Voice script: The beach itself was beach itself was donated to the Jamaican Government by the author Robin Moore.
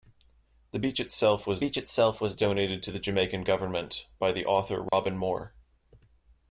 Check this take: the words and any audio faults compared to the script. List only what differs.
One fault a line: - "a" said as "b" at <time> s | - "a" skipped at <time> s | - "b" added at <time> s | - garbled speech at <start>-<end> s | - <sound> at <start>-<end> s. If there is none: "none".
- dropout at 4.9-4.9 s